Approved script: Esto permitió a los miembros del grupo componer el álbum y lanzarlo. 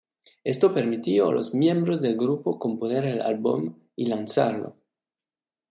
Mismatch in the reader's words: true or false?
false